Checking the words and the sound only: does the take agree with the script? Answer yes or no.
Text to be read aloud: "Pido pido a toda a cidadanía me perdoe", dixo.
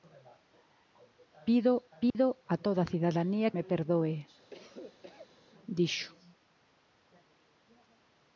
no